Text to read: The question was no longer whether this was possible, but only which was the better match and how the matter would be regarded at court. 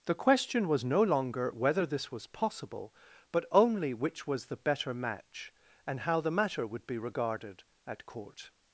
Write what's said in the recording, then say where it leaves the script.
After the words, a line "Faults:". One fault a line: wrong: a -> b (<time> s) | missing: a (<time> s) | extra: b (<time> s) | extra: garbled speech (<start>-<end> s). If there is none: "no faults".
The question was no longer whether this was possible, but only which was the better match and how the matter would be regarded at court.
Faults:
no faults